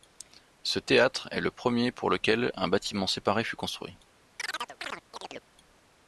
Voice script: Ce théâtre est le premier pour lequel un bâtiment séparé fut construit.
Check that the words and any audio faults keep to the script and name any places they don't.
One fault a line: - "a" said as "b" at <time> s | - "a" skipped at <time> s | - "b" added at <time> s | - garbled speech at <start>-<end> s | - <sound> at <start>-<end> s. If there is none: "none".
- chirp at 4.4-5.5 s